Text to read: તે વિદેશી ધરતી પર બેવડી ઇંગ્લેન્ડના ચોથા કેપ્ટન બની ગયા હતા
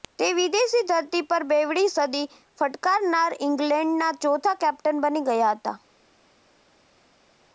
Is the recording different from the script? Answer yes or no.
yes